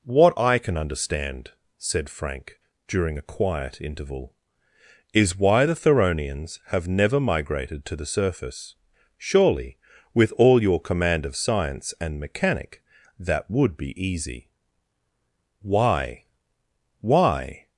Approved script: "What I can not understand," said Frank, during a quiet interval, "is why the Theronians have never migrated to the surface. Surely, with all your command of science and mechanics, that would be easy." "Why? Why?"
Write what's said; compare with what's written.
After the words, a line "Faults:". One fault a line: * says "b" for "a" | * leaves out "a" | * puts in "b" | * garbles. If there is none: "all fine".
"What I can understand," said Frank, during a quiet interval, "is why the Theronians have never migrated to the surface. Surely, with all your command of science and mechanic, that would be easy." "Why? Why?"
Faults:
* leaves out "not"
* says "mechanic" for "mechanics"